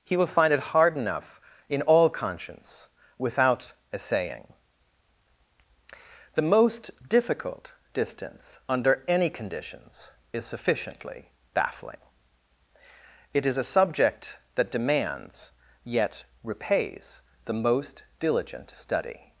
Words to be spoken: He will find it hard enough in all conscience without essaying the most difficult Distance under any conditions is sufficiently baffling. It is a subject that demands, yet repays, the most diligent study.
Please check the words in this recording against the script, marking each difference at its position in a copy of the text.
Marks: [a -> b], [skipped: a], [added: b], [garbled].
He will find it hard enough in all conscience without essaying the most difficult Distance under any conditions is sufficiently baffling. It is a subject that demands, yet repays, the most diligent study.